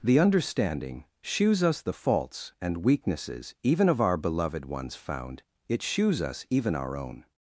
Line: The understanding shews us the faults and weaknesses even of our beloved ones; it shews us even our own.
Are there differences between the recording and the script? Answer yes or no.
yes